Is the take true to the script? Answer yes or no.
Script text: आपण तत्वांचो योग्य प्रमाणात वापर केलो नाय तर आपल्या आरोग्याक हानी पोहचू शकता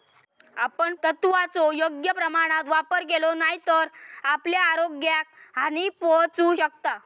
yes